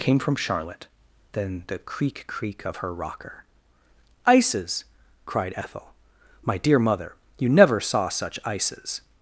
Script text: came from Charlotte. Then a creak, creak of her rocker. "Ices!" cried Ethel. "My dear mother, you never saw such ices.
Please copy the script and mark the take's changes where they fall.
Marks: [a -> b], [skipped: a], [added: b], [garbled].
came from Charlotte. Then [a -> the] creak, creak of her rocker. "Ices!" cried Ethel. "My dear mother, you never saw such ices.